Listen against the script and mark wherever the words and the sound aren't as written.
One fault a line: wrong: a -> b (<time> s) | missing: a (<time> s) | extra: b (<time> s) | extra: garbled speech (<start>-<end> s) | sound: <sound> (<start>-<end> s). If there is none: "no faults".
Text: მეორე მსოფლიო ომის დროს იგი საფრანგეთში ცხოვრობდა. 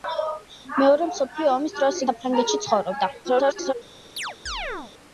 missing: იგი (2.0 s)
extra: garbled speech (3.2-3.7 s)
sound: chirp (4.2-4.9 s)